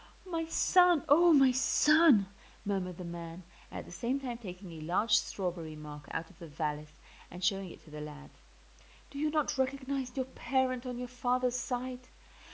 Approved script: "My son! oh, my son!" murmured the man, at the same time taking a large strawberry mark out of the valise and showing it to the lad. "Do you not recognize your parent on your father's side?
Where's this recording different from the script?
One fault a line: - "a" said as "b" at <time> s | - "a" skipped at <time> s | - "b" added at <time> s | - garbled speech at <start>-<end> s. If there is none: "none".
none